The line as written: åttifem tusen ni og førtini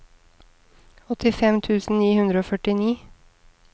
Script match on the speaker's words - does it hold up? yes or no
no